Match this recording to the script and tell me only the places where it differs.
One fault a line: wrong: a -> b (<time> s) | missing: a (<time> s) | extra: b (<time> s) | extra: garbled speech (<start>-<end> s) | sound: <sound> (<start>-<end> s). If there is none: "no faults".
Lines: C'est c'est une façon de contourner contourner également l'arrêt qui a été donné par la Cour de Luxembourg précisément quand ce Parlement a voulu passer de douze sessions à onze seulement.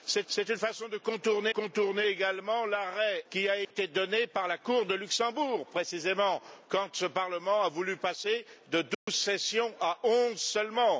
sound: dropout (3.6-3.7 s)
sound: dropout (8.9-9.1 s)